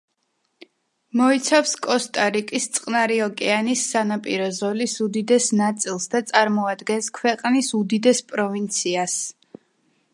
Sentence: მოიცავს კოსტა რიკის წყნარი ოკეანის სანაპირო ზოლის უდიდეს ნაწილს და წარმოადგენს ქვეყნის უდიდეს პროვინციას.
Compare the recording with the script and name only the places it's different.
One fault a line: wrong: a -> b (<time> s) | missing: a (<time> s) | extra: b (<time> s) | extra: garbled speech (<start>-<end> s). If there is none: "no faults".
no faults